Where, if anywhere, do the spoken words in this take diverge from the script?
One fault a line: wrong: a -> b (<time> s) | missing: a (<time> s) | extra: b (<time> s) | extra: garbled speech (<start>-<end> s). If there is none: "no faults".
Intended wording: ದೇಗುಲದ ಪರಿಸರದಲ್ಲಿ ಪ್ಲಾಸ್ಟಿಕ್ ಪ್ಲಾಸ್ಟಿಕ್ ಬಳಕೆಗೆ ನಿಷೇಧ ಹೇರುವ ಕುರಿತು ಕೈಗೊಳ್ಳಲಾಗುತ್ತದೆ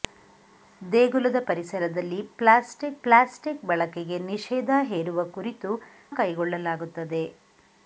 no faults